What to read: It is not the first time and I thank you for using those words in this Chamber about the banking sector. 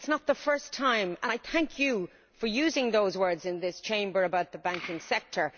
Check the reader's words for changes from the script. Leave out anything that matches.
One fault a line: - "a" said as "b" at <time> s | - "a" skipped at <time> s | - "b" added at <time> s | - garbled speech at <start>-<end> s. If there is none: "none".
none